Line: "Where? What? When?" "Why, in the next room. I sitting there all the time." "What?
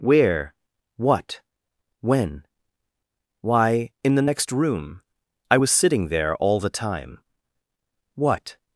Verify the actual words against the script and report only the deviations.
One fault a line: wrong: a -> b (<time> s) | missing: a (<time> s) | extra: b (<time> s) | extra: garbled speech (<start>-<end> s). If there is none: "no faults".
extra: was (5.5 s)